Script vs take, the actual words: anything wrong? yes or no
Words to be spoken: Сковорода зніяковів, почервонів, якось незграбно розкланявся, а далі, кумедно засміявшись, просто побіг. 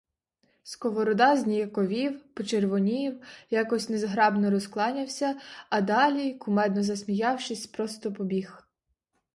no